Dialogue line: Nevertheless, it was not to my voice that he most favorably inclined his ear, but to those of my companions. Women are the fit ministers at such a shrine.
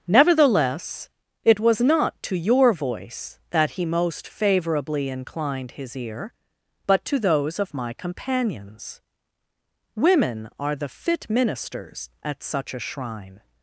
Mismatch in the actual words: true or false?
true